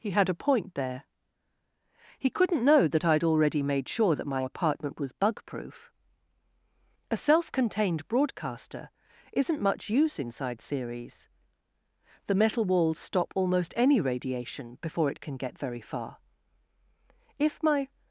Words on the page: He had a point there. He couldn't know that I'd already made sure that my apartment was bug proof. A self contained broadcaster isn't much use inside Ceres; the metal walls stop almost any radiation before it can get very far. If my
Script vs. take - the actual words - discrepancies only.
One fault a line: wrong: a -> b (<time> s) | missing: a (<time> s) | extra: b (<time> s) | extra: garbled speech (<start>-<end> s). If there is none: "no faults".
no faults